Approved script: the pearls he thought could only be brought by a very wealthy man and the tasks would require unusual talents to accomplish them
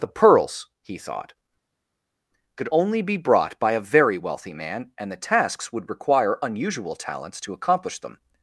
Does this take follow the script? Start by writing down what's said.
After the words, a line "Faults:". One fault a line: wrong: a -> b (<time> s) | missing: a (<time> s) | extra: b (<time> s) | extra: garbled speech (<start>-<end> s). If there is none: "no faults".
the pearls he thought could only be brought by a very wealthy man and the tasks would require unusual talents to accomplish them
Faults:
no faults